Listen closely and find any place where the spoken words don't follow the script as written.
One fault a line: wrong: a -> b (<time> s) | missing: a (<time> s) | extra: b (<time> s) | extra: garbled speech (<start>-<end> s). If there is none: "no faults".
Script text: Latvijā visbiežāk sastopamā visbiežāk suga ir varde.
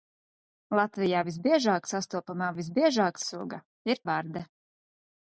no faults